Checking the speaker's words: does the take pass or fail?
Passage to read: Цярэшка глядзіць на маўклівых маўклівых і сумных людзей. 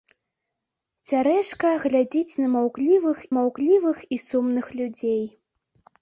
pass